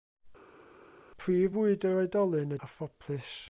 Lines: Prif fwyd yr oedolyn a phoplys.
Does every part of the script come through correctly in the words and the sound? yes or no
yes